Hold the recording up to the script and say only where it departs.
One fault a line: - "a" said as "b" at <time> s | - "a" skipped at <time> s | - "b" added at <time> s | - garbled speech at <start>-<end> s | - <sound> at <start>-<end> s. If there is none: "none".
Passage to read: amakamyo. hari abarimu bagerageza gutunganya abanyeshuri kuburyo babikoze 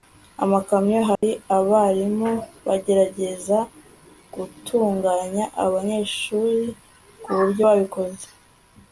- dropout at 1.2-1.2 s